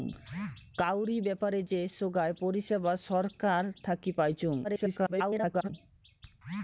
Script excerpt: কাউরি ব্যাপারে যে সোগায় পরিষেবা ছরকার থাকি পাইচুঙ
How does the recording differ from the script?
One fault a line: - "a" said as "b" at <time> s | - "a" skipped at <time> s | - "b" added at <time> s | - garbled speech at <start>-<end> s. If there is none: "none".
- garbled speech at 4.6-5.7 s